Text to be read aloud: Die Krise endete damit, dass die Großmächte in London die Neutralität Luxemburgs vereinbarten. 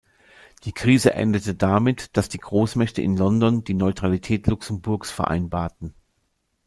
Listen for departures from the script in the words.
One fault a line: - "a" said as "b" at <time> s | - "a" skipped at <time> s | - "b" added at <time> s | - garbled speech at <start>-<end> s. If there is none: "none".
none